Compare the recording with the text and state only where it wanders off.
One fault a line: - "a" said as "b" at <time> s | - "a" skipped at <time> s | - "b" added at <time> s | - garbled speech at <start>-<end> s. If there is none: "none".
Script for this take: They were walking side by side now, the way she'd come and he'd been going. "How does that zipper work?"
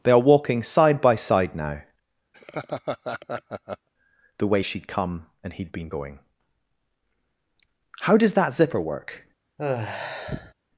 - "were" said as "are" at 0.1 s